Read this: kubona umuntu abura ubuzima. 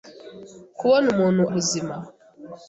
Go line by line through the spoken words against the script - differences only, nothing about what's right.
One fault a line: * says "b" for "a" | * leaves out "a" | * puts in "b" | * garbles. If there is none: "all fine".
* leaves out "abura"